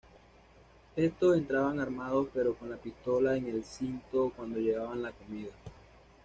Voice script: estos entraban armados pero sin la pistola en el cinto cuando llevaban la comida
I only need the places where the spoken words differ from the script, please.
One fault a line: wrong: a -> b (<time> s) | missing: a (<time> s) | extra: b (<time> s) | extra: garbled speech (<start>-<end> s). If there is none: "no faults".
wrong: sin -> con (2.5 s)